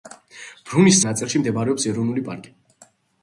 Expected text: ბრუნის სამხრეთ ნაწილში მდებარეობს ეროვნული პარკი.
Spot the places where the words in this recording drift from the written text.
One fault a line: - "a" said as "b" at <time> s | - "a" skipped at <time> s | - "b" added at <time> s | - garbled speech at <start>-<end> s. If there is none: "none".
- "სამხრეთ" skipped at 1.0 s